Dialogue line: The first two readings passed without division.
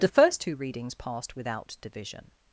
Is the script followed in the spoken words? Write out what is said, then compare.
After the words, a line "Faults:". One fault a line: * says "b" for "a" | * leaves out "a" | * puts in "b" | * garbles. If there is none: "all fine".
The first two readings passed without division.
Faults:
all fine